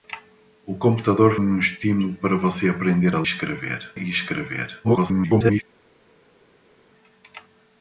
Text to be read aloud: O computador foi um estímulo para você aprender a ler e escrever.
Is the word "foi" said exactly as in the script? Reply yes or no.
no